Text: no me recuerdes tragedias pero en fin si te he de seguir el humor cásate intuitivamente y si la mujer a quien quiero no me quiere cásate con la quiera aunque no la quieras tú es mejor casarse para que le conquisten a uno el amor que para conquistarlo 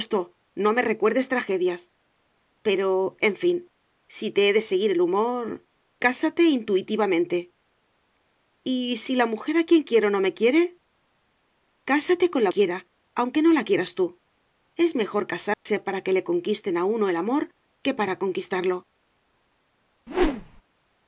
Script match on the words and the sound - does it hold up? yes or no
no